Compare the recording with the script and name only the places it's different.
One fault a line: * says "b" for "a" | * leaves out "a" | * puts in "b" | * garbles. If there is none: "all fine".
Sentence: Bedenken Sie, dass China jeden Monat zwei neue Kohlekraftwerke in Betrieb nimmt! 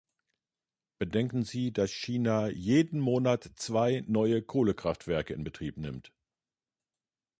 all fine